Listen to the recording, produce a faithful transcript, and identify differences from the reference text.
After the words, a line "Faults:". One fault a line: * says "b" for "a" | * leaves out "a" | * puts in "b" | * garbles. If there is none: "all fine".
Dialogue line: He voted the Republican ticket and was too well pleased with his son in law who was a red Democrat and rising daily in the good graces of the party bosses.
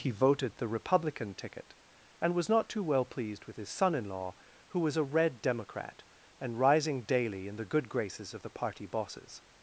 He voted the Republican ticket and was not too well pleased with his son in law who was a red Democrat and rising daily in the good graces of the party bosses.
Faults:
* puts in "not"